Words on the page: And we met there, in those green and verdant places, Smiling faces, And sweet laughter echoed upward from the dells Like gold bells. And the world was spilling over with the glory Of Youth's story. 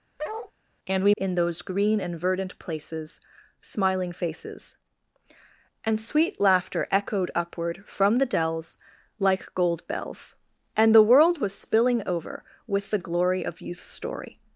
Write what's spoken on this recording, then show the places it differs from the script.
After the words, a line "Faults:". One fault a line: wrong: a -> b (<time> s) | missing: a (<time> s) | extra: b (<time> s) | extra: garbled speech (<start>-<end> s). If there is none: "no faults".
And we in those green and verdant places, Smiling faces, And sweet laughter echoed upward from the dells Like gold bells. And the world was spilling over with the glory Of Youth's story.
Faults:
missing: met there (1.1 s)